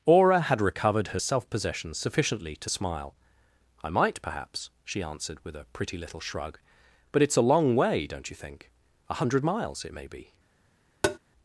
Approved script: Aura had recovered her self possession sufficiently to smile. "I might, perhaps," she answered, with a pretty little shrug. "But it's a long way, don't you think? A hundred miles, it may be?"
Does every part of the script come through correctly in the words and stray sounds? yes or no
no